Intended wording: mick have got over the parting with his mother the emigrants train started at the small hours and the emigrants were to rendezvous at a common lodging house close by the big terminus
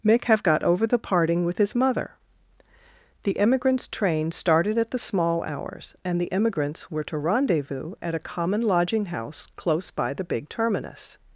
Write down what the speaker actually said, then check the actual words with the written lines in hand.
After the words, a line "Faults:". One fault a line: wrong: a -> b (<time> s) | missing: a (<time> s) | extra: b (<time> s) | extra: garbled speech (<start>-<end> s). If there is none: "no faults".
mick have got over the parting with his mother the emigrants train started at the small hours and the emigrants were to rendezvous at a common lodging house close by the big terminus
Faults:
no faults